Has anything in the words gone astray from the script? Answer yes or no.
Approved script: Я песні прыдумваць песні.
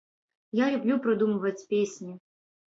yes